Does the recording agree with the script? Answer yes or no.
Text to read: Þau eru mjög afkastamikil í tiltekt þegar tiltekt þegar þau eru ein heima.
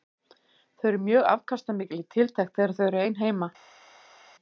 no